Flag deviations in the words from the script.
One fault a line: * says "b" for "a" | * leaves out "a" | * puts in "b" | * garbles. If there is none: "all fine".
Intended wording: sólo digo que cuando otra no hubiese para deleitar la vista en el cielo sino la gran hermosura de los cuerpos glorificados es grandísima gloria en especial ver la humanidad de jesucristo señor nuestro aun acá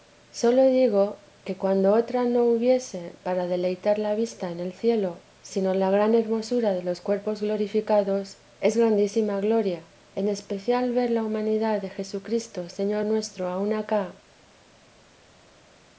all fine